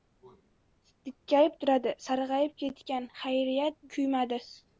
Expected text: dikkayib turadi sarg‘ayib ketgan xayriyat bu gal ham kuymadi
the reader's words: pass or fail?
fail